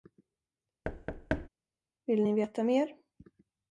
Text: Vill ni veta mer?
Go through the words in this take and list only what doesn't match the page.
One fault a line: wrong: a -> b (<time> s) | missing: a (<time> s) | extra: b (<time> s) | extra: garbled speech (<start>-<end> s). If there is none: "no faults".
no faults